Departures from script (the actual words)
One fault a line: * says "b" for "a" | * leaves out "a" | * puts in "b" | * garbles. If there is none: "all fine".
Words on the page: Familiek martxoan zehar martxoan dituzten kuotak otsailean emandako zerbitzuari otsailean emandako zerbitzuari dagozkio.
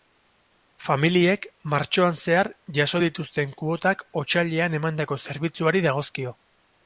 * says "jaso" for "martxoan"
* leaves out "otsailean emandako zerbitzuari"